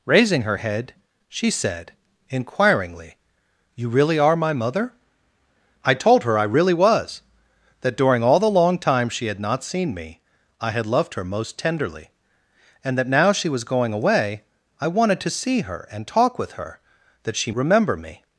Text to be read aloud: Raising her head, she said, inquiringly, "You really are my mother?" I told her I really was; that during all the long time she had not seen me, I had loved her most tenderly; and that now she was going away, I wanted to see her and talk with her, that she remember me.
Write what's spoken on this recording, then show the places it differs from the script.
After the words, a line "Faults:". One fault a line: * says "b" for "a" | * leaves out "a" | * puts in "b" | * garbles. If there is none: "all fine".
Raising her head, she said, inquiringly, "You really are my mother?" I told her I really was; that during all the long time she had not seen me, I had loved her most tenderly; and that now she was going away, I wanted to see her and talk with her, that she remember me.
Faults:
all fine